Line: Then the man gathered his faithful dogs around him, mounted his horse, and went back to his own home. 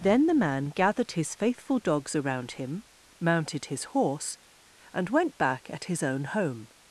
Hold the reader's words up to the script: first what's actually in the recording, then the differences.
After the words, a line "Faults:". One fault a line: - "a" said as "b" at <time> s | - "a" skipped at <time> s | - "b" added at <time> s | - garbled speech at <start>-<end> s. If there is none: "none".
Then the man gathered his faithful dogs around him, mounted his horse, and went back at his own home.
Faults:
- "to" said as "at" at 5.7 s